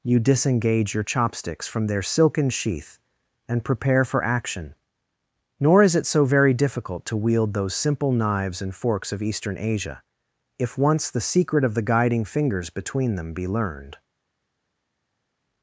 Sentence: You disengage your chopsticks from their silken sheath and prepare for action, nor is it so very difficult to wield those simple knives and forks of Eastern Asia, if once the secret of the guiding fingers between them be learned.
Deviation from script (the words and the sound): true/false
false